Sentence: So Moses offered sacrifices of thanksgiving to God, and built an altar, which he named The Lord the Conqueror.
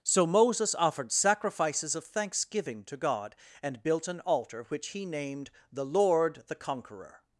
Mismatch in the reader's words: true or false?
false